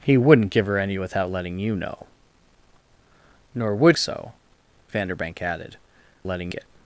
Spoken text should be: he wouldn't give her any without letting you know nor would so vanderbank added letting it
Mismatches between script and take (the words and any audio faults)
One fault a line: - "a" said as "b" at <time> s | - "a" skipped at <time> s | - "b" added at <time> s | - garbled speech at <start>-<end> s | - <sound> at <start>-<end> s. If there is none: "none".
none